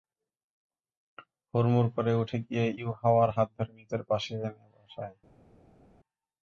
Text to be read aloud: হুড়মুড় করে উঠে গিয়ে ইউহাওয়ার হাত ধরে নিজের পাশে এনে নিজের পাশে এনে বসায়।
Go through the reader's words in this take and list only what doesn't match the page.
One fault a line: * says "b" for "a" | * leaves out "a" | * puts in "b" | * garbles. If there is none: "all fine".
* leaves out "নিজের পাশে এনে"